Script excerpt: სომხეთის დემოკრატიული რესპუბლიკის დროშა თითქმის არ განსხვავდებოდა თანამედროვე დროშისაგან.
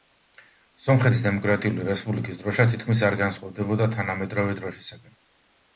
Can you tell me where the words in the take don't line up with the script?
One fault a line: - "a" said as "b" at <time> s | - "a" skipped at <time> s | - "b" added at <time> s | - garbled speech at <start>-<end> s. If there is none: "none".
none